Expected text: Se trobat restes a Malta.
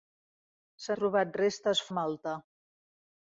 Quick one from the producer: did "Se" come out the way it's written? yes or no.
yes